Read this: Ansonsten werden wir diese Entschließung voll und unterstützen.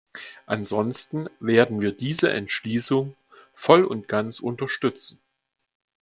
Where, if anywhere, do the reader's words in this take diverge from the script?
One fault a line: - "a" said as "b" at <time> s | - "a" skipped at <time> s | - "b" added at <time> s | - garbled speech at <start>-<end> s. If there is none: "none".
- "ganz" added at 4.1 s